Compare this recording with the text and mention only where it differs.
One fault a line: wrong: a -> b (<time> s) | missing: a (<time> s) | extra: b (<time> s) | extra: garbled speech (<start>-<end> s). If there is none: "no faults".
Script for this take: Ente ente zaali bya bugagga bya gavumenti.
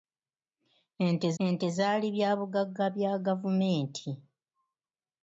no faults